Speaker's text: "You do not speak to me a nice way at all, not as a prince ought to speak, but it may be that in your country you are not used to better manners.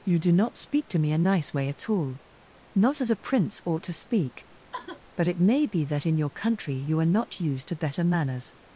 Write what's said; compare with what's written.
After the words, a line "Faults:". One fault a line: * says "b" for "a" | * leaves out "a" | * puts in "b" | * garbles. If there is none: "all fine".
"You do not speak to me a nice way at all, not as a prince ought to speak, but it may be that in your country you are not used to better manners.
Faults:
all fine